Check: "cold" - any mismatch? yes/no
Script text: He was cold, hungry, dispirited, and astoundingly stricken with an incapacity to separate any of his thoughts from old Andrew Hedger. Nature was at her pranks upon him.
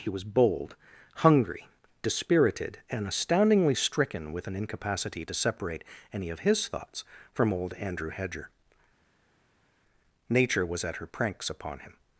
yes